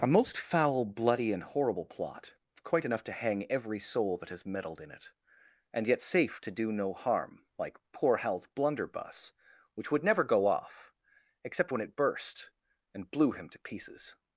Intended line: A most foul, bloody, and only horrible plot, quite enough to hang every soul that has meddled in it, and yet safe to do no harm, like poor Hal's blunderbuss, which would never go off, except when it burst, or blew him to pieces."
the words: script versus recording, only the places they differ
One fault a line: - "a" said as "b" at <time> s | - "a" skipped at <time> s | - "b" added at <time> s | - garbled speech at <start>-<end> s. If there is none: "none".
- "only" skipped at 1.4 s
- "or" said as "and" at 12.9 s